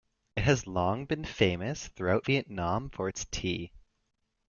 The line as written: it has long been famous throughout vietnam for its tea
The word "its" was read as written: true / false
true